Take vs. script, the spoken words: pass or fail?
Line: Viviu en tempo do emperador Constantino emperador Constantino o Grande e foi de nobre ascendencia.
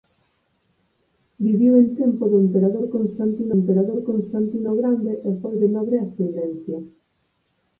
pass